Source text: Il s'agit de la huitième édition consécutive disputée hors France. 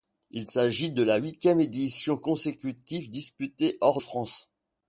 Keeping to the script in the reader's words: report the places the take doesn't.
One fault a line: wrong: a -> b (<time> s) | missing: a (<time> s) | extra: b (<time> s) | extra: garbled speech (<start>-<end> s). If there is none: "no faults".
no faults